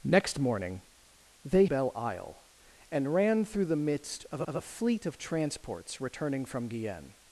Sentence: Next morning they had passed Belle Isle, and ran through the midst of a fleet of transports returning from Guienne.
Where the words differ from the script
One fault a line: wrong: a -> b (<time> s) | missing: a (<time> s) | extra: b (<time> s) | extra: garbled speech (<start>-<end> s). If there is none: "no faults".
missing: had passed (1.6 s)
extra: of (4.5 s)